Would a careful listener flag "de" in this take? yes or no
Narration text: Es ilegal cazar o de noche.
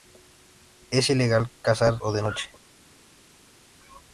no